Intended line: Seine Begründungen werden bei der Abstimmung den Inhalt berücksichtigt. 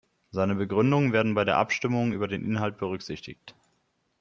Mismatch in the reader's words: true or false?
true